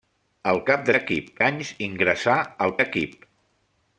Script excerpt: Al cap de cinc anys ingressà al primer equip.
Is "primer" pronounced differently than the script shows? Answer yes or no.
yes